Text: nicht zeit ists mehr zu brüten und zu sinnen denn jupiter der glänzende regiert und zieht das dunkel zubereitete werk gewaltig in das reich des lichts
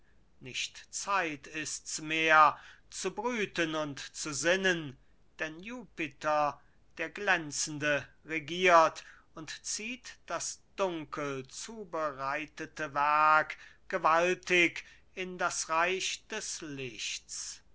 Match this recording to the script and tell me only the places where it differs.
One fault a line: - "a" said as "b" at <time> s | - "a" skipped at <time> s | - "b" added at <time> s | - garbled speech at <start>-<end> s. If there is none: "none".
none